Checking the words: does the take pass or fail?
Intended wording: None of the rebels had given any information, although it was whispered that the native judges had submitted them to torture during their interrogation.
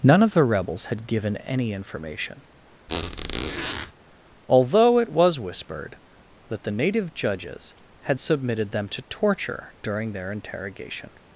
pass